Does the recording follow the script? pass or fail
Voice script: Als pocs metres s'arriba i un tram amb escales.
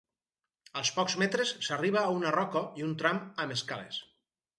fail